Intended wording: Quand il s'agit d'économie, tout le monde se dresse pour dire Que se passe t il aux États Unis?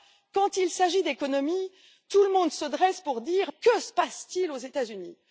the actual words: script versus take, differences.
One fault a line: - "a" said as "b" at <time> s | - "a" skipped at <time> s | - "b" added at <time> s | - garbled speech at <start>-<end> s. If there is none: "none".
none